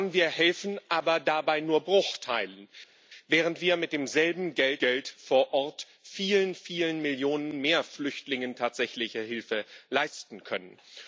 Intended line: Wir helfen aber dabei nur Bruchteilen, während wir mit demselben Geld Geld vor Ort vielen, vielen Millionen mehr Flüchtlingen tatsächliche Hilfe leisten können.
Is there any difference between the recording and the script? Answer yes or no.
no